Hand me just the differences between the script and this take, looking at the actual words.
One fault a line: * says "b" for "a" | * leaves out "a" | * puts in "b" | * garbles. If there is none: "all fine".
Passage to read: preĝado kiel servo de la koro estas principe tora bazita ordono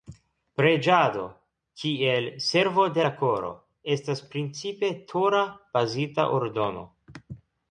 all fine